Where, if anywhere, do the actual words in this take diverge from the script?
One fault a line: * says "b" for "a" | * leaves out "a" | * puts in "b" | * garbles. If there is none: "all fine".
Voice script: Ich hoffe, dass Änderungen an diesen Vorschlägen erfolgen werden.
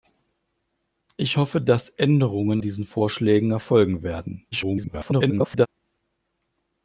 * leaves out "an"
* garbles